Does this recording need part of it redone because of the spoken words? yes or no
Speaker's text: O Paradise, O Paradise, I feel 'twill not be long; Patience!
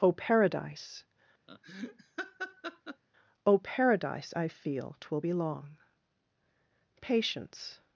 yes